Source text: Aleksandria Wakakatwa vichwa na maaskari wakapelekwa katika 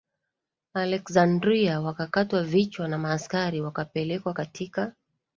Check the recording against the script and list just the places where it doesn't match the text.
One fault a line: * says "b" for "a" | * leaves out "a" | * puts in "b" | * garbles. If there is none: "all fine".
all fine